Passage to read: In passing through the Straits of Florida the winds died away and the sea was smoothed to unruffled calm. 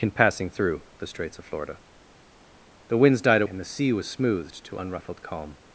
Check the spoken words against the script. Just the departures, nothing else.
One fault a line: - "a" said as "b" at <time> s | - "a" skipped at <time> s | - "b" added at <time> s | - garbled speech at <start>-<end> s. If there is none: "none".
- "away" skipped at 3.4 s